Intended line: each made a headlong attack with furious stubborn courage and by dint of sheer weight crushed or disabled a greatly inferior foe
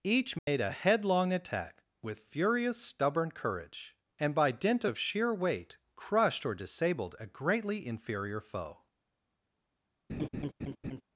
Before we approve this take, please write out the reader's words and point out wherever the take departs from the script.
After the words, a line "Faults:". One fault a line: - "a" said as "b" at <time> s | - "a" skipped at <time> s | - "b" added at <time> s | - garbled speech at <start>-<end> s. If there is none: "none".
each made a headlong attack with furious stubborn courage and by dint of sheer weight crushed or disabled a greatly inferior foe
Faults:
none